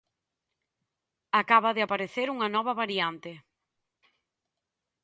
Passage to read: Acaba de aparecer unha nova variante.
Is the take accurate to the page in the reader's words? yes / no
yes